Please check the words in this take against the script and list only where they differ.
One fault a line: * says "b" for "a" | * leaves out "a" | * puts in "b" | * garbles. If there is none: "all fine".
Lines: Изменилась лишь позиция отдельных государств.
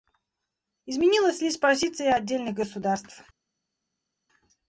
all fine